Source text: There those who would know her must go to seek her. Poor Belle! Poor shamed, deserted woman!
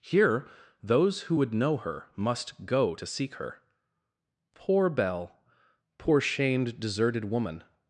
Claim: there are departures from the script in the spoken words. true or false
true